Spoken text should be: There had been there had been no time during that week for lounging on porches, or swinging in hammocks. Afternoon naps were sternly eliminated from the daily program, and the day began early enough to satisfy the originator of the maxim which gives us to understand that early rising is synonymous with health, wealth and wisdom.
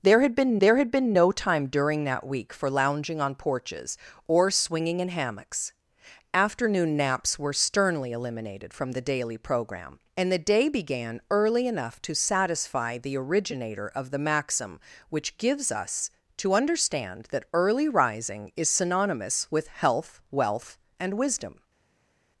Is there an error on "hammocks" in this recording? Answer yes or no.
no